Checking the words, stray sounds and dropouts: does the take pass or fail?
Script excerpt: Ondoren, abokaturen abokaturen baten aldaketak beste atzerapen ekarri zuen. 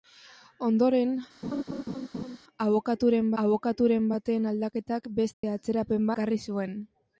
fail